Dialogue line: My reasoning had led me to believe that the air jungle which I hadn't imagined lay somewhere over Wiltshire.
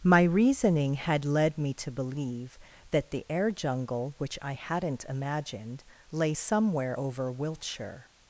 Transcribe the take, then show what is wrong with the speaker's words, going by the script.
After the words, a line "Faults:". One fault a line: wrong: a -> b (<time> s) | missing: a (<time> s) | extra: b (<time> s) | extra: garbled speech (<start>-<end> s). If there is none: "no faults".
My reasoning had led me to believe that the air jungle which I hadn't imagined lay somewhere over Wiltshire.
Faults:
no faults